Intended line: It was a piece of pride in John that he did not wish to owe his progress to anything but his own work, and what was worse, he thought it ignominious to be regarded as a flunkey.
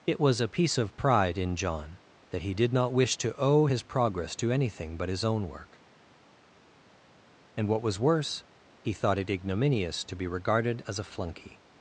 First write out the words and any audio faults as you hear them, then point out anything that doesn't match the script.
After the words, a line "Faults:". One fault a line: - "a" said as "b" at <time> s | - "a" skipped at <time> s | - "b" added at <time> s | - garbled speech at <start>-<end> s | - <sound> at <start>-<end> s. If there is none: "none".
It was a piece of pride in John that he did not wish to owe his progress to anything but his own work, and what was worse, he thought it ignominious to be regarded as a flunkey.
Faults:
none